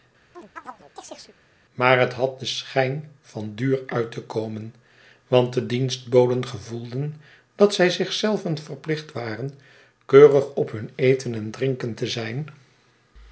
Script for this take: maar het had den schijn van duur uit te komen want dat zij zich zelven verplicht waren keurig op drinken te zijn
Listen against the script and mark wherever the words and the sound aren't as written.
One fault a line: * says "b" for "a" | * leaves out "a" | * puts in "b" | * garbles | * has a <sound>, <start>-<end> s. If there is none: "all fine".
* has a chirp, 0.3-1.4 s
* puts in "de dienstboden gevoelden"
* puts in "hun eten en"